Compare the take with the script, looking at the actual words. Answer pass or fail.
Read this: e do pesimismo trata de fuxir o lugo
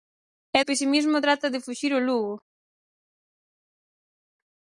fail